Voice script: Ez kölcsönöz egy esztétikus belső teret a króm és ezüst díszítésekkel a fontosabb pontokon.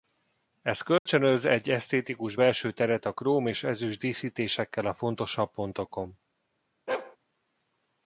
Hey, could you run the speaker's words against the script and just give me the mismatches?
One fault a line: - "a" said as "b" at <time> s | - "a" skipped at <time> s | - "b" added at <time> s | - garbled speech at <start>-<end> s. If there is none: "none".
none